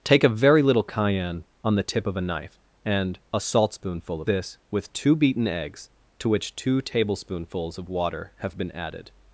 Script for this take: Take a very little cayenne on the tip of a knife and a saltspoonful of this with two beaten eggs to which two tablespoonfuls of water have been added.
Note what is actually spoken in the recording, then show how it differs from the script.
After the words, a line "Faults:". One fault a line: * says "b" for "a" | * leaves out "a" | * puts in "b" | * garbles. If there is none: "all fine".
Take a very little cayenne on the tip of a knife and a saltspoonful of this with two beaten eggs to which two tablespoonfuls of water have been added.
Faults:
all fine